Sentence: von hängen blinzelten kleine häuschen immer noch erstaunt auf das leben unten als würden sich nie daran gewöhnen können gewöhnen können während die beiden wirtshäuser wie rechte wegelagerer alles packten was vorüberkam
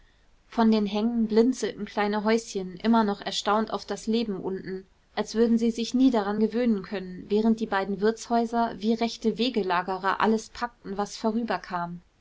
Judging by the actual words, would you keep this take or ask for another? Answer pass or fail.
fail